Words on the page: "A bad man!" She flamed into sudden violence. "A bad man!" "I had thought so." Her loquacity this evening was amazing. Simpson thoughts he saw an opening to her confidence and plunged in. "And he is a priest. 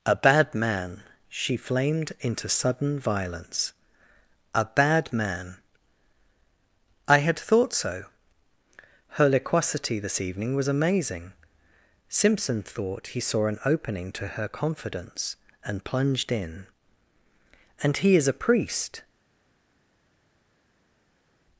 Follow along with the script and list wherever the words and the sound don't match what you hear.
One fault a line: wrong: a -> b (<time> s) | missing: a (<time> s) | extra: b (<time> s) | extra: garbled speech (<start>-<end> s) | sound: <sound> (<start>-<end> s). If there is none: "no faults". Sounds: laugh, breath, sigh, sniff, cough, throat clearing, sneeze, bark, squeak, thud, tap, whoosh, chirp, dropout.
wrong: thoughts -> thought (12.6 s)